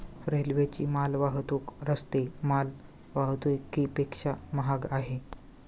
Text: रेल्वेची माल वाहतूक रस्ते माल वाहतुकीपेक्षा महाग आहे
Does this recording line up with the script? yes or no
yes